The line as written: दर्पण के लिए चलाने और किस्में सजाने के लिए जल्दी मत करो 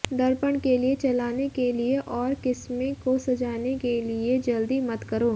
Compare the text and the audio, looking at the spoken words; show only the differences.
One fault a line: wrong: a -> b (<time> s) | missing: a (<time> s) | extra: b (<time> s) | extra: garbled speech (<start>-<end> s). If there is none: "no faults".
extra: के लिए (1.5 s)
extra: को (3.0 s)